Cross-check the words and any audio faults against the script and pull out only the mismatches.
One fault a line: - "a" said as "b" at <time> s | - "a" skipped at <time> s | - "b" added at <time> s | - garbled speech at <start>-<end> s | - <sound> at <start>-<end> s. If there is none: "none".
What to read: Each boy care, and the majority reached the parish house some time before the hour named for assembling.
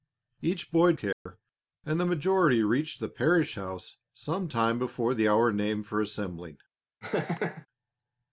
- dropout at 1.1-1.3 s
- laugh at 7.0-7.7 s